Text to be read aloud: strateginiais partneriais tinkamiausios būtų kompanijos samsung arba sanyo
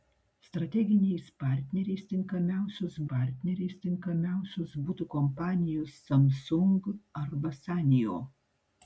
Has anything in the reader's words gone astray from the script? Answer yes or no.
yes